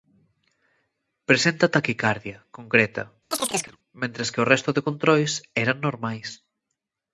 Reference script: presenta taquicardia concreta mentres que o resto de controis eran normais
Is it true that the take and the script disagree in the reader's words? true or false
false